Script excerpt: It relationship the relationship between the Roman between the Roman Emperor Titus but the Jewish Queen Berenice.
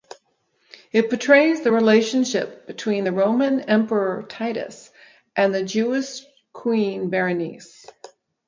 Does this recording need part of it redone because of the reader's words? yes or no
yes